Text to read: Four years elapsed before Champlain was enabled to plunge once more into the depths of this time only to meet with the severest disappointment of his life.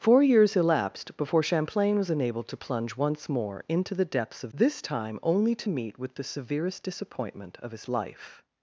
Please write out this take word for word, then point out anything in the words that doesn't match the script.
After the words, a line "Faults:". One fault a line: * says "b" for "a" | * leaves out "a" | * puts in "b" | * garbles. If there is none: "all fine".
Four years elapsed before Champlain was enabled to plunge once more into the depths of this time only to meet with the severest disappointment of his life.
Faults:
all fine